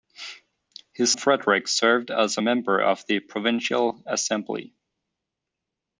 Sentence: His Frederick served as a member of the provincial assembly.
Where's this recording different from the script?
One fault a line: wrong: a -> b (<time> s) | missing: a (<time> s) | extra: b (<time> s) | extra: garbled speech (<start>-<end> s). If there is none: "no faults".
no faults